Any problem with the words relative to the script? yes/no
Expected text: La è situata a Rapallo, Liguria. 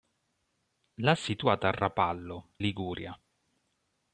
no